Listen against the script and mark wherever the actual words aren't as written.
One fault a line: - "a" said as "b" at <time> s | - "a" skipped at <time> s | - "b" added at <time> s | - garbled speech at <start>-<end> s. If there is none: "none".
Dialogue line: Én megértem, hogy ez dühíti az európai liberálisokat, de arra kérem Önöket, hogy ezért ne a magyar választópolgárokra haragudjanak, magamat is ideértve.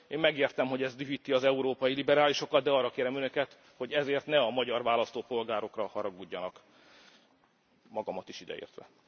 none